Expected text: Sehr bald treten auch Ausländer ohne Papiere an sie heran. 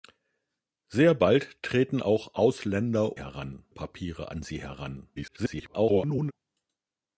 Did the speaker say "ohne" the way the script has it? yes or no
no